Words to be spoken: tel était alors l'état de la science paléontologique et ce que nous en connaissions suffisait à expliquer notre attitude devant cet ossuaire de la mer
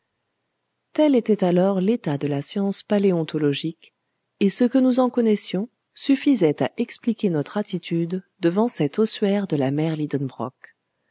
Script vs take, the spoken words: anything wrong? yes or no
no